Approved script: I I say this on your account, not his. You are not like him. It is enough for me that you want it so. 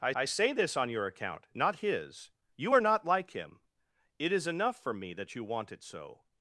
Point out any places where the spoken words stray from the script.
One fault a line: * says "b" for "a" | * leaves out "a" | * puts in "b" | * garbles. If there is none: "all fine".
all fine